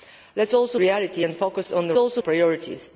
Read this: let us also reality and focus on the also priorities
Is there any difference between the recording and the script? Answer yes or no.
no